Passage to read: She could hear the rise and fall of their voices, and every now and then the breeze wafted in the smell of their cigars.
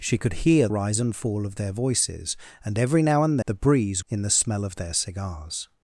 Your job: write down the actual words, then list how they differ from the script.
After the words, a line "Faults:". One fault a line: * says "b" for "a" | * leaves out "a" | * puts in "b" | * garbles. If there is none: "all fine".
She could hear rise and fall of their voices, and every now and the breeze in the smell of their cigars.
Faults:
* leaves out "the"
* leaves out "then"
* leaves out "wafted"